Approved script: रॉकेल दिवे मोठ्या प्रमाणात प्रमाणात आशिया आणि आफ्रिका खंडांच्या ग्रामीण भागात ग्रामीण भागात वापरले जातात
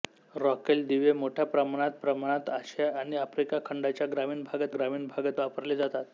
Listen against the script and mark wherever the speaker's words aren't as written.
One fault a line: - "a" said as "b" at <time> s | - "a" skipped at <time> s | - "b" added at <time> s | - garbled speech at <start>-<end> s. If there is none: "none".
none